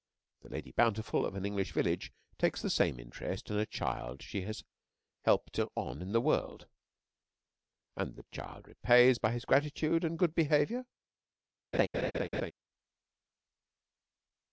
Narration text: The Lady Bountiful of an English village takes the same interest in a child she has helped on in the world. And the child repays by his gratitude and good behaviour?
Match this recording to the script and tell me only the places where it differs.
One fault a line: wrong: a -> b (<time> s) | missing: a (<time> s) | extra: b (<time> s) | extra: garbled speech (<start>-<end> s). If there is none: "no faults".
no faults